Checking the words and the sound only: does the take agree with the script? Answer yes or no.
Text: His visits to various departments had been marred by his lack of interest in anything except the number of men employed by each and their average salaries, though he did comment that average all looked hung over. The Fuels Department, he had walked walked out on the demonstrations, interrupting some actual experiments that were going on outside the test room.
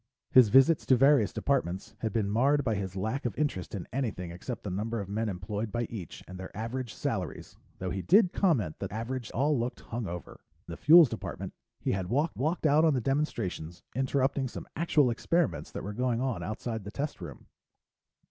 yes